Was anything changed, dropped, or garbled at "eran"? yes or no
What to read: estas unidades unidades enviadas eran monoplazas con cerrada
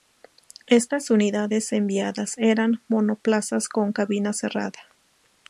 no